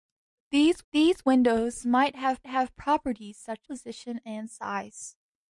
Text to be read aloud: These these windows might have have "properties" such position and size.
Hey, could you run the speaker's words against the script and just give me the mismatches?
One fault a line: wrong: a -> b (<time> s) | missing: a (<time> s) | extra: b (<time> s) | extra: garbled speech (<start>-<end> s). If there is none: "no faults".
no faults